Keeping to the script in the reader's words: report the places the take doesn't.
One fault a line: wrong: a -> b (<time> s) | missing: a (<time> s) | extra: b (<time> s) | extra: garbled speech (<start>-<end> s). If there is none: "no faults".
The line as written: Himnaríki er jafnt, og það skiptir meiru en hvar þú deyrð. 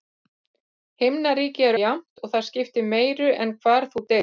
no faults